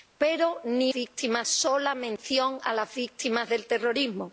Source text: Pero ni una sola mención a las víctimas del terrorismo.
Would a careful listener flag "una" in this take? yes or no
yes